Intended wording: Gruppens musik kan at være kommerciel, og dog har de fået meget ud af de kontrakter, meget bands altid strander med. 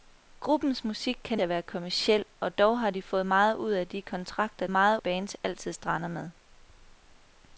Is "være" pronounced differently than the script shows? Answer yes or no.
no